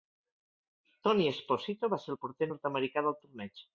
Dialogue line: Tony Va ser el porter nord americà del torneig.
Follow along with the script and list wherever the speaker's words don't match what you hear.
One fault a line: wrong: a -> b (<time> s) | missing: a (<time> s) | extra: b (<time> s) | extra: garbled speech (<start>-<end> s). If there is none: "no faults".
extra: Esposito (1.3 s)